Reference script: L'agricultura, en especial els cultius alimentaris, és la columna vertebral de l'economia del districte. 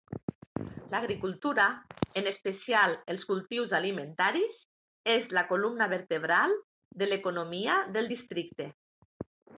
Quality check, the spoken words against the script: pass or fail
pass